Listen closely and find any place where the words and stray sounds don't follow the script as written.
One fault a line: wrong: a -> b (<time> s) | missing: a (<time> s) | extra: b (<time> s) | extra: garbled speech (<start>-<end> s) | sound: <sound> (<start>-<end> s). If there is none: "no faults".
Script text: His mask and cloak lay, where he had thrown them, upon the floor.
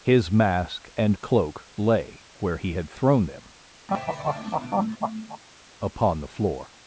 sound: laugh (3.9-5.4 s)